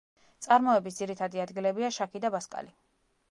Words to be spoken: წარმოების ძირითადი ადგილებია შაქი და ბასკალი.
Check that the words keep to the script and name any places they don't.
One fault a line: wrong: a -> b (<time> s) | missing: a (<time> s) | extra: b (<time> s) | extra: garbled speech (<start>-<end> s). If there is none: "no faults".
no faults